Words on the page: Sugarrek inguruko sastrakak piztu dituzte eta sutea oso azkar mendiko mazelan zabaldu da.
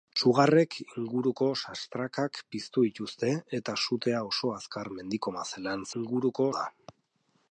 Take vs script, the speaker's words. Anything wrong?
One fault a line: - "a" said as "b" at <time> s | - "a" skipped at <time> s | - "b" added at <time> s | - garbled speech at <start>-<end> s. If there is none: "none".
- "zabaldu" said as "inguruko" at 6.0 s